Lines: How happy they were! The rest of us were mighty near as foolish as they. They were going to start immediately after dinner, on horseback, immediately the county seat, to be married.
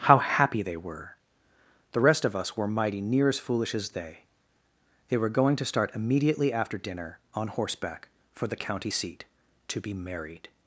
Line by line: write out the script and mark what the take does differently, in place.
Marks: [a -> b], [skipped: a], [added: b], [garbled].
How happy they were! The rest of us were mighty near as foolish as they. They were going to start immediately after dinner, on horseback, [immediately -> for] the county seat, to be married.